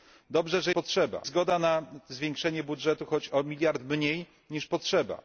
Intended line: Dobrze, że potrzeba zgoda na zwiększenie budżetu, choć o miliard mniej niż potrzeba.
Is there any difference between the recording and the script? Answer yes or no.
no